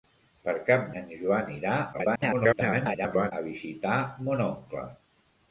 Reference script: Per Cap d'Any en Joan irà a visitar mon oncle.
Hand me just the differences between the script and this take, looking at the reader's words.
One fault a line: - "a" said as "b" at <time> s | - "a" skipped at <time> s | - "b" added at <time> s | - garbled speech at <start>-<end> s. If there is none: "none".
- "d'Any" skipped at 0.9 s
- garbled speech at 1.9-3.3 s